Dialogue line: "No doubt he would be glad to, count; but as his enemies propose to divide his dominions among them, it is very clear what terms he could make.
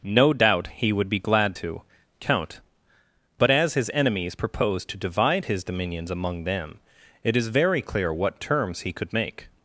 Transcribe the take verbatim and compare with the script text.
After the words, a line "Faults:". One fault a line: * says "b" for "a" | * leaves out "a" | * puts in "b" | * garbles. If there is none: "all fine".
"No doubt he would be glad to, count; but as his enemies propose to divide his dominions among them, it is very clear what terms he could make.
Faults:
all fine